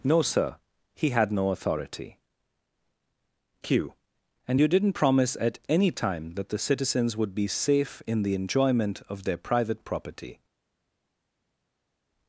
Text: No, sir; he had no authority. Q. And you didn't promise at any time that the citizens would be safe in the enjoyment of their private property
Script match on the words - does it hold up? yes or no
yes